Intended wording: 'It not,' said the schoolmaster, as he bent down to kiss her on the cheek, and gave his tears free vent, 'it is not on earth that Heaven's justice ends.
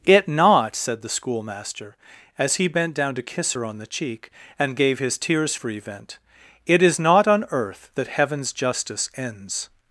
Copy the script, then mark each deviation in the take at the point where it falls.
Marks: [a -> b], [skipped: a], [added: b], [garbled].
'It not,' said the schoolmaster, as he bent down to kiss her on the cheek, and gave his tears free vent, 'it is not on earth that Heaven's justice ends.